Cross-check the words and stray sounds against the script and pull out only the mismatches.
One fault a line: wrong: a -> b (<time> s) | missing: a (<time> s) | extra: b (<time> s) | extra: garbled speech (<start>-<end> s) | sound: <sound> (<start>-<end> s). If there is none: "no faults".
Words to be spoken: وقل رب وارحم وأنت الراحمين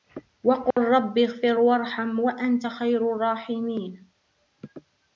sound: dropout (0.7-0.8 s)
extra: اغفر (1.2 s)
extra: خير (2.6 s)